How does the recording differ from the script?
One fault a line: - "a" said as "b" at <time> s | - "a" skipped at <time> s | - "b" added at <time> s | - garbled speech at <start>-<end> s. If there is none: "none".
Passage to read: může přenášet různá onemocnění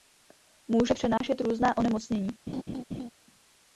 none